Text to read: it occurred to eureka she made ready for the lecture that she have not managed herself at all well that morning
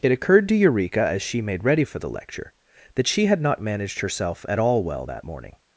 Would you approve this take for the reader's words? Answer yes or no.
no